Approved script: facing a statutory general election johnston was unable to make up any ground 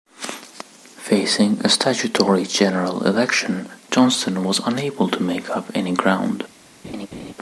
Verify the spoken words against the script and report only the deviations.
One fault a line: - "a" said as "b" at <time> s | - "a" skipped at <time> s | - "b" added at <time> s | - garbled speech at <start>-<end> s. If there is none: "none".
none